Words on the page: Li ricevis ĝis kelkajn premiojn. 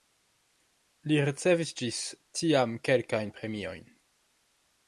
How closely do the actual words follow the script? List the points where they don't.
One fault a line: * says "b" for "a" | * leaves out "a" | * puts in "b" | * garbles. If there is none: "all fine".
* puts in "tiam"